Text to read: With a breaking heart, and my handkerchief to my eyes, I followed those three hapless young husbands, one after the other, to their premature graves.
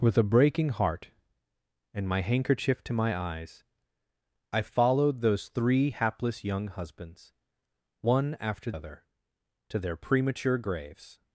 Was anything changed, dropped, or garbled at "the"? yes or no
yes